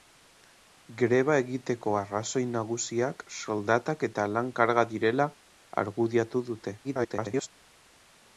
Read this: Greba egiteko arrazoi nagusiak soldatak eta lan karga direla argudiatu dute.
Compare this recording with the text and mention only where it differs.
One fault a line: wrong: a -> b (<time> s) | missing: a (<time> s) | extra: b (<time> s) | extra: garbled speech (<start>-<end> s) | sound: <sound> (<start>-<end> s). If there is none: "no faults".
extra: garbled speech (6.8-7.5 s)